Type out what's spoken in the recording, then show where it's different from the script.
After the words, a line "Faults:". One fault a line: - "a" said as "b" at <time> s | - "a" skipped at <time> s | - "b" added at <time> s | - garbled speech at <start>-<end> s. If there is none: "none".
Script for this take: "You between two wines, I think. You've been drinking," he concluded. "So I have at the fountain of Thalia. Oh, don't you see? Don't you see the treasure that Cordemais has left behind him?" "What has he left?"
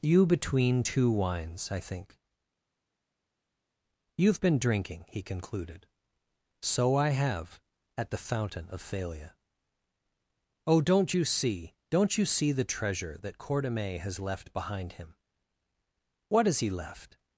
"You between two wines, I think. You've been drinking," he concluded. "So I have at the fountain of Thalia. Oh, don't you see? Don't you see the treasure that Cordemais has left behind him?" "What has he left?"
Faults:
none